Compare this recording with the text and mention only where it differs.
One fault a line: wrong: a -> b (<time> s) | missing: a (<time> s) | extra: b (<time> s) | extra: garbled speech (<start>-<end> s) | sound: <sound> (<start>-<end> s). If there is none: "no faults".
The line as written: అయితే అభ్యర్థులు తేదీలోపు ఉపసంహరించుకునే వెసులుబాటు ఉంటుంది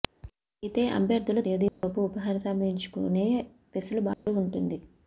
sound: dropout (1.7-1.8 s)
sound: dropout (4.1-4.3 s)